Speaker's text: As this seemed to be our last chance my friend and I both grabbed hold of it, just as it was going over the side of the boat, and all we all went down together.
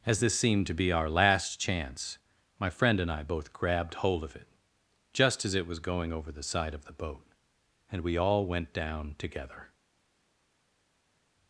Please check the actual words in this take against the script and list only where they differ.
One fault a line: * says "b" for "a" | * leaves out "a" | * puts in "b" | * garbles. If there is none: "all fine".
* leaves out "all"